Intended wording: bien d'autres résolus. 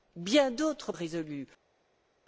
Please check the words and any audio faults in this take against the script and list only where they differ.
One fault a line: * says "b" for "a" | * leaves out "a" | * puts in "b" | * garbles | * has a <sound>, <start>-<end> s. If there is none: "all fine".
all fine